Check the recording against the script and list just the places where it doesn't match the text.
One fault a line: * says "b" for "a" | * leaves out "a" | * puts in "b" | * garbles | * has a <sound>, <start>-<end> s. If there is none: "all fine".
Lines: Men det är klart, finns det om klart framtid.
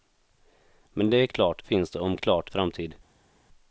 all fine